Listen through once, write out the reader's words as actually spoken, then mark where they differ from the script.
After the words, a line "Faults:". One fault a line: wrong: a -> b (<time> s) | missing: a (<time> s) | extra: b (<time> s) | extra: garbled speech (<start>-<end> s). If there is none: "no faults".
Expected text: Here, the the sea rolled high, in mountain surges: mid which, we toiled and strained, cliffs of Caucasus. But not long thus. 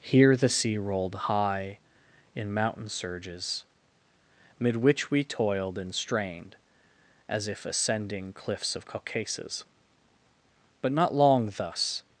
Here, the sea rolled high, in mountain surges: mid which, we toiled and strained, as if ascending cliffs of Caucasus. But not long thus.
Faults:
missing: the (0.5 s)
extra: as if ascending (7.3 s)